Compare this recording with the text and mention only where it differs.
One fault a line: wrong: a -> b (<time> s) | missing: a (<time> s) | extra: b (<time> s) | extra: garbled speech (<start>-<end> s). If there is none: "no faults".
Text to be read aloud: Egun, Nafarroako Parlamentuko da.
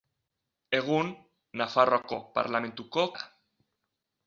no faults